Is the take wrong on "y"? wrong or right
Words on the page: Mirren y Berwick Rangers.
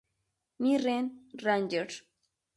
wrong